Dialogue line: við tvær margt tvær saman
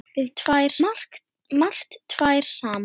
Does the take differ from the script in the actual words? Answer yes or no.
no